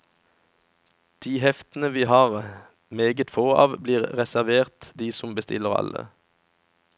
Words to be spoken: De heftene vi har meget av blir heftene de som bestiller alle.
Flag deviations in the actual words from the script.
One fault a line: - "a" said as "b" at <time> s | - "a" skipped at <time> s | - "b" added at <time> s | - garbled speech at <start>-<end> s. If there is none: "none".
- "få" added at 3.3 s
- "heftene" said as "reservert" at 4.2 s